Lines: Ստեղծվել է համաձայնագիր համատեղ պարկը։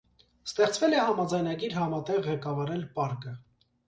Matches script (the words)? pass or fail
fail